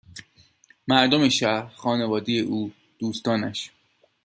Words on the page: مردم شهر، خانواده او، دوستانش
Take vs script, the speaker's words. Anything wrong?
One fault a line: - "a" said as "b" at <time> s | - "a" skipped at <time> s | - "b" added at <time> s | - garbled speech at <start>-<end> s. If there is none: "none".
none